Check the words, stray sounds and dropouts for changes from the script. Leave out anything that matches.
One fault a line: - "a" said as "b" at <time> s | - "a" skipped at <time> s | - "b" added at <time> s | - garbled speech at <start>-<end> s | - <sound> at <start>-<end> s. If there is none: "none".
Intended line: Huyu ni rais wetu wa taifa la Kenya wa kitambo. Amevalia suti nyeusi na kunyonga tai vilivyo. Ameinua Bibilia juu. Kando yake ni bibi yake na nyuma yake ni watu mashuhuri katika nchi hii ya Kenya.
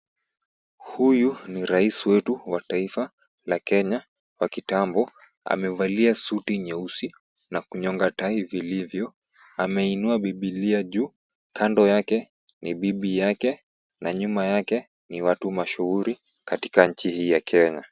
none